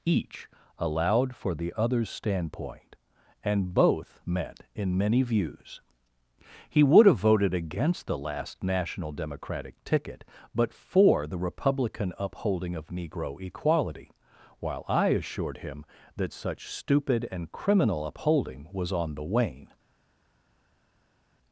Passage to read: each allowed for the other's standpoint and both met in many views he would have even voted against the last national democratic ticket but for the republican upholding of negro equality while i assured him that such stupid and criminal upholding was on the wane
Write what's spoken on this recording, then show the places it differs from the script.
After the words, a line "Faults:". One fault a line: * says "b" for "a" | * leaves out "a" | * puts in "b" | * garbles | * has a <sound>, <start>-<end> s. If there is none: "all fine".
each allowed for the other's standpoint and both met in many views he would have voted against the last national democratic ticket but for the republican upholding of negro equality while i assured him that such stupid and criminal upholding was on the wane
Faults:
* leaves out "even"